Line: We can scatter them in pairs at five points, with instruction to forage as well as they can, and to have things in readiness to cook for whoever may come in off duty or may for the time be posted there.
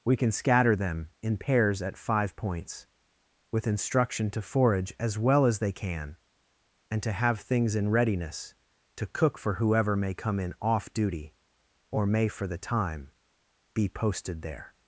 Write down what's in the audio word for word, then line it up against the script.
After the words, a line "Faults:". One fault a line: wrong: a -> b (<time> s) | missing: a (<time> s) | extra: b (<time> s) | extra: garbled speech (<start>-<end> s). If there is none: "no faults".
We can scatter them in pairs at five points, with instruction to forage as well as they can, and to have things in readiness to cook for whoever may come in off duty or may for the time be posted there.
Faults:
no faults